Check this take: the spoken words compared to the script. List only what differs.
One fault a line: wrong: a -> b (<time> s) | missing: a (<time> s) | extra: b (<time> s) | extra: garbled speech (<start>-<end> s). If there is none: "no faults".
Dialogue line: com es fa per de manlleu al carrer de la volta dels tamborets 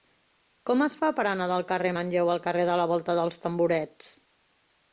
extra: anar del carrer (1.3 s)